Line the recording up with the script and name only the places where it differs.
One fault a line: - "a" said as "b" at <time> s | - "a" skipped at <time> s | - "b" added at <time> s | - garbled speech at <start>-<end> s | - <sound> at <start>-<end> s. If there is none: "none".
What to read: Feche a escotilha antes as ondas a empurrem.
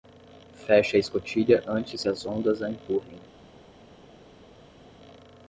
none